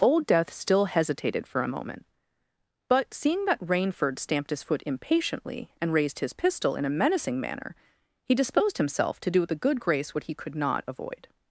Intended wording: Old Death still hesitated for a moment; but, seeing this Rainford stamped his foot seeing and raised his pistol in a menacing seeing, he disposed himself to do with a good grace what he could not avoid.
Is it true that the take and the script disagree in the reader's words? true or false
true